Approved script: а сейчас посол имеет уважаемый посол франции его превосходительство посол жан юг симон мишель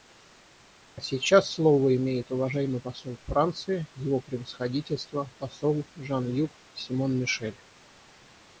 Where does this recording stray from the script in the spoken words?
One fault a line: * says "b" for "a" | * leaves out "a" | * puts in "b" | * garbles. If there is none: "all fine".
* says "слово" for "посол"